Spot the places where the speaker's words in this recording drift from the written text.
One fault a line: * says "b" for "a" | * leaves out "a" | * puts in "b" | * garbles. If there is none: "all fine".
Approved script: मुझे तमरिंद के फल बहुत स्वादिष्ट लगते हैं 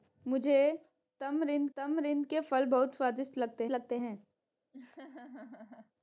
* puts in "तमरिंद"
* puts in "लगते"